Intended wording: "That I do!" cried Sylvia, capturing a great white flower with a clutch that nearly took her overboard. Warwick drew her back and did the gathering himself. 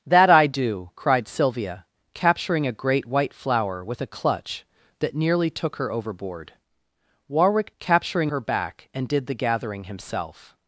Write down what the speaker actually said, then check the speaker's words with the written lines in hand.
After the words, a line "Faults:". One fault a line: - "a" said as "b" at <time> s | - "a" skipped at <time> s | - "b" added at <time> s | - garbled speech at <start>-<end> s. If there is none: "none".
"That I do!" cried Sylvia, capturing a great white flower with a clutch that nearly took her overboard. Warwick capturing her back and did the gathering himself.
Faults:
- "drew" said as "capturing" at 7.8 s